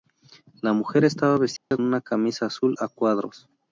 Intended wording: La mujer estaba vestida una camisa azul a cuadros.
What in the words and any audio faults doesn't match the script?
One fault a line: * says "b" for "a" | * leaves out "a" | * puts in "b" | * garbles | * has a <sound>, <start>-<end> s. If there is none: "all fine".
* has a dropout, 1.6-1.7 s